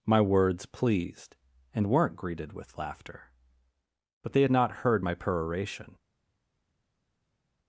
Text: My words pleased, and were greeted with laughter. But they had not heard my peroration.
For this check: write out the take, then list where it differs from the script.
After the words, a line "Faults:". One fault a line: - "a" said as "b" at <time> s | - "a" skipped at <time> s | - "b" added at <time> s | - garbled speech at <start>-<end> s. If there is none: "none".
My words pleased, and weren't greeted with laughter. But they had not heard my peroration.
Faults:
- "were" said as "weren't" at 1.9 s